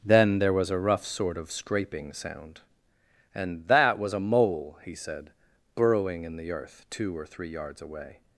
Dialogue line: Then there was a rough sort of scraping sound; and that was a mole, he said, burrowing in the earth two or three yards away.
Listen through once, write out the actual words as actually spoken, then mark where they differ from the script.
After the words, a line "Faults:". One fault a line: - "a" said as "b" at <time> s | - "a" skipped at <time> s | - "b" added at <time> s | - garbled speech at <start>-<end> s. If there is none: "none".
Then there was a rough sort of scraping sound; and that was a mole, he said, burrowing in the earth two or three yards away.
Faults:
none